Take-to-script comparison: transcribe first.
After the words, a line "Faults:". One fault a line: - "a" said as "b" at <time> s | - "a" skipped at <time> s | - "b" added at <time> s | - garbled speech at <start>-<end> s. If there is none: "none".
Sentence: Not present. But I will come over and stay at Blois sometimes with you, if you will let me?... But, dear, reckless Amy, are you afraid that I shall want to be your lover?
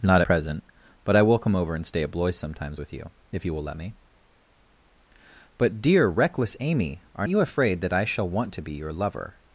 Not present. But I will come over and stay at Blois sometimes with you, if you will let me?... But, dear, reckless Amy, are you afraid that I shall want to be your lover?
Faults:
none